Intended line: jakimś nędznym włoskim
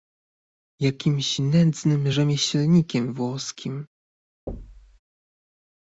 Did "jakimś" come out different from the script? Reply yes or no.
no